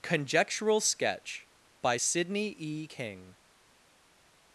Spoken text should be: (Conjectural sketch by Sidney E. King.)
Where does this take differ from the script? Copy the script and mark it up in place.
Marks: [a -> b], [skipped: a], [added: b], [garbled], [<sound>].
(Conjectural sketch by Sidney E. King.)